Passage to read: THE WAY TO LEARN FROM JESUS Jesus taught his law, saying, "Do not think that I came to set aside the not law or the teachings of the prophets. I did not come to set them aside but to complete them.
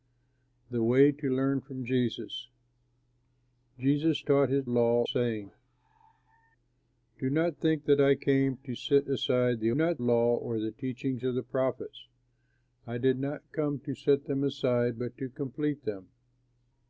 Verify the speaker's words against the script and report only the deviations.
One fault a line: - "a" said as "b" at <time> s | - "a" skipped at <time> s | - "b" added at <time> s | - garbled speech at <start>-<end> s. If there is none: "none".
none